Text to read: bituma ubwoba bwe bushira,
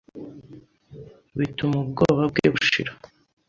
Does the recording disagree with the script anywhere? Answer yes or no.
no